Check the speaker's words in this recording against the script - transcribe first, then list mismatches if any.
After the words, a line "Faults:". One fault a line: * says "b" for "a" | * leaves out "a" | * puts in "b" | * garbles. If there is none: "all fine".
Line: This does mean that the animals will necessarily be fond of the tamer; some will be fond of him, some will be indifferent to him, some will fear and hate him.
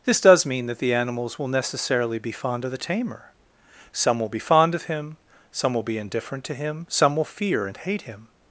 This does mean that the animals will necessarily be fond of the tamer; some will be fond of him, some will be indifferent to him, some will fear and hate him.
Faults:
all fine